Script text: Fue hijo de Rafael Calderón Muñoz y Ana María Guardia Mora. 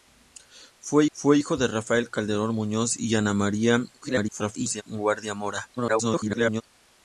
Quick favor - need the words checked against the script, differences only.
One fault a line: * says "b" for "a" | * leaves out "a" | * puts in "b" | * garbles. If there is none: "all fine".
* puts in "fue"
* garbles
* garbles